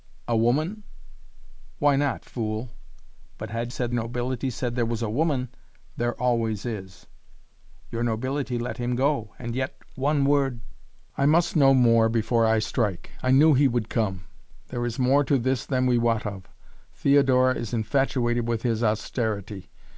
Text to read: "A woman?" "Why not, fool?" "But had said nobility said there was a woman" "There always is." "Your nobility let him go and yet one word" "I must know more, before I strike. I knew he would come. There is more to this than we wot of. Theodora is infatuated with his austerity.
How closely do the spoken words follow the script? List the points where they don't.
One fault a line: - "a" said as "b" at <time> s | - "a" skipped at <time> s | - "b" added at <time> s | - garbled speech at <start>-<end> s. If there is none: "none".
none